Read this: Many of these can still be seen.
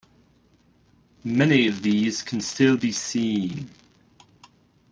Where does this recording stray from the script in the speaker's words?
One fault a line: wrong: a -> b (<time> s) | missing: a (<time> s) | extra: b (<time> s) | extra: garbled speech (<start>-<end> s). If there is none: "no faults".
no faults